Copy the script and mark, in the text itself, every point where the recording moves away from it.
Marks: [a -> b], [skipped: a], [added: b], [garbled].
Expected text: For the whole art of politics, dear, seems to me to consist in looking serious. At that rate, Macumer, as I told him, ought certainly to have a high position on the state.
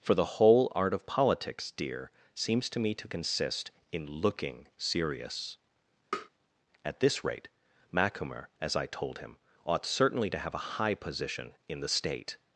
For the whole art of politics, dear, seems to me to consist in looking serious. At [that -> this] rate, Macumer, as I told him, ought certainly to have a high position [on -> in] the state.